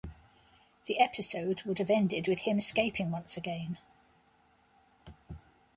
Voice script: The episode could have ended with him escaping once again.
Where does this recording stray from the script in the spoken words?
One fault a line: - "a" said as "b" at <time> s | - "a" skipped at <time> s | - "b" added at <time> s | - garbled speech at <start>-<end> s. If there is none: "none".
- "could" said as "would" at 1.6 s